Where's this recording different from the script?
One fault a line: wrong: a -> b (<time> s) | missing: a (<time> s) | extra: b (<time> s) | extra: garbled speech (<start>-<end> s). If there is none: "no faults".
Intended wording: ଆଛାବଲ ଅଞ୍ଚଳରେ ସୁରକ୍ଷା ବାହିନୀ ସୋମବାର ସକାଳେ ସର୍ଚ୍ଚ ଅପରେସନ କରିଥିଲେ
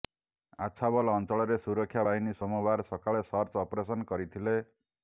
no faults